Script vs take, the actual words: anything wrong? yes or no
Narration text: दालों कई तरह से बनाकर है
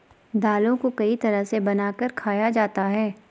yes